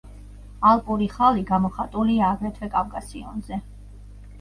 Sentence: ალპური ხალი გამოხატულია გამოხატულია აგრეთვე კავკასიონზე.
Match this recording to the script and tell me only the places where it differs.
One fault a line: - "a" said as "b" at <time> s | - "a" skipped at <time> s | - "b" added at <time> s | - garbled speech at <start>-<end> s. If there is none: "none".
- "გამოხატულია" skipped at 2.3 s